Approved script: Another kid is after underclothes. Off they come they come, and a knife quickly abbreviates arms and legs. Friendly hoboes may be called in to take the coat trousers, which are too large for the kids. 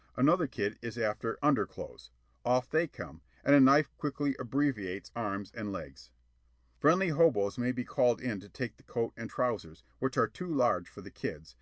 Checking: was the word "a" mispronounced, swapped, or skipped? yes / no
no